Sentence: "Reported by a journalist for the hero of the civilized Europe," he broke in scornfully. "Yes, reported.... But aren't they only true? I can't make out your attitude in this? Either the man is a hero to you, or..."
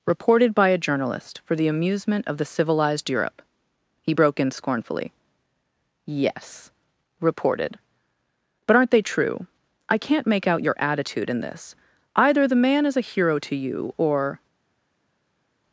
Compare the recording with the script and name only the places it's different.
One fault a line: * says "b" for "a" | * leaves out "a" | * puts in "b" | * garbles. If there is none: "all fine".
* says "amusement" for "hero"
* leaves out "only"